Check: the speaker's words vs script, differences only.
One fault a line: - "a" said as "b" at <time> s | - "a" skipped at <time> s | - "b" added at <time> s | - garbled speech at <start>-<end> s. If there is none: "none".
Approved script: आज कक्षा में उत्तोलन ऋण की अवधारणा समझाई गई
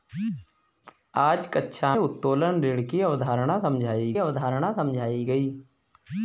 - "में" skipped at 1.9 s
- "अवधारणा समझाई" added at 4.2 s